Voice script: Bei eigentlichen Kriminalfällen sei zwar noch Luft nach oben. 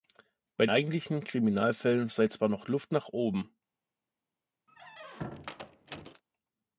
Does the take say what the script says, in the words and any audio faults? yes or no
no